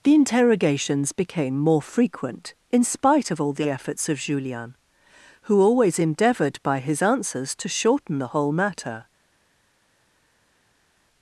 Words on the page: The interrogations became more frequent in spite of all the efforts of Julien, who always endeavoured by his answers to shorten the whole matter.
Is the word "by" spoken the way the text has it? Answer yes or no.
yes